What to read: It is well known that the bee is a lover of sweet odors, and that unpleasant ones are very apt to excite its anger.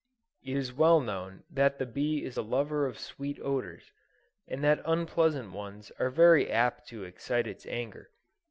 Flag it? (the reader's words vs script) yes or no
no